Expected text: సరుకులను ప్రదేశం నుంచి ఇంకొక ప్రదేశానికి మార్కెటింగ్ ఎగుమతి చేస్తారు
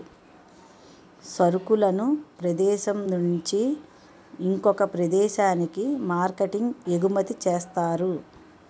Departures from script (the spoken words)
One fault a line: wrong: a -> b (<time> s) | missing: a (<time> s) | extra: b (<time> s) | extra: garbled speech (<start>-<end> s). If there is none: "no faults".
no faults